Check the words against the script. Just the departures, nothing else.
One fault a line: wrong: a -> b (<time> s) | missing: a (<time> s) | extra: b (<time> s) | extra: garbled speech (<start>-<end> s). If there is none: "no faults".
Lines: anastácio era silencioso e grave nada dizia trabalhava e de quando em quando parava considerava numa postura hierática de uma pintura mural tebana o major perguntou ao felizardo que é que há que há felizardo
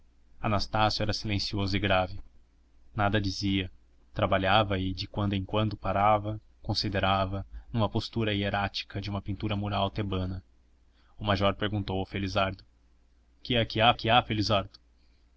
no faults